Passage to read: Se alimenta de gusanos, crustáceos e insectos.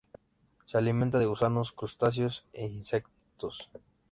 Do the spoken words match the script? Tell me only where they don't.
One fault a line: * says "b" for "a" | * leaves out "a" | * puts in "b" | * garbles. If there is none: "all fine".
all fine